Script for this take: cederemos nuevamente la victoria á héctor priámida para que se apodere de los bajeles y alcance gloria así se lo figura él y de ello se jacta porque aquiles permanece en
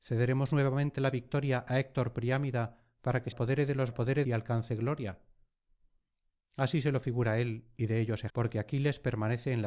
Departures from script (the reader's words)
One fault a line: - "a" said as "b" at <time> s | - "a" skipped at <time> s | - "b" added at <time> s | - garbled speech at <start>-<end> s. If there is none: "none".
- "se" skipped at 3.3 s
- "bajeles" said as "apodere" at 3.9 s
- "jacta" skipped at 8.3 s